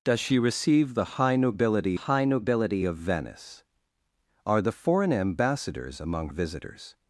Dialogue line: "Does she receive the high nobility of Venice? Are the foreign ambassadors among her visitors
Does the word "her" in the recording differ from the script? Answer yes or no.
yes